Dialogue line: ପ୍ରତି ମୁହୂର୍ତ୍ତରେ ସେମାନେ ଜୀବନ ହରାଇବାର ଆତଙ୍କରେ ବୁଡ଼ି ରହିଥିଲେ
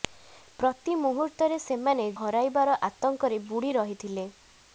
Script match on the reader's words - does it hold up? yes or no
no